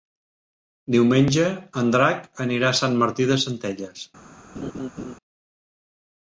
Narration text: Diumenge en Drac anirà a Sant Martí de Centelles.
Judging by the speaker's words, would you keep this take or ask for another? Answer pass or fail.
pass